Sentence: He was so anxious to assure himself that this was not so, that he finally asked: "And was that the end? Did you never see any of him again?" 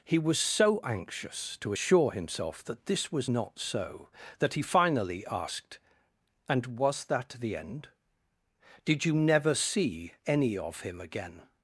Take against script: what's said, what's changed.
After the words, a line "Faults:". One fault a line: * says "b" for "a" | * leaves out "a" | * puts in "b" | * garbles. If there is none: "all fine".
He was so anxious to assure himself that this was not so, that he finally asked: "And was that the end? Did you never see any of him again?"
Faults:
all fine